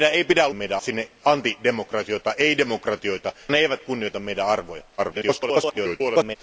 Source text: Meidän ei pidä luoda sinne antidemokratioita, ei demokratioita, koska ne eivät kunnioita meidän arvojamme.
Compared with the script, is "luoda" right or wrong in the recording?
wrong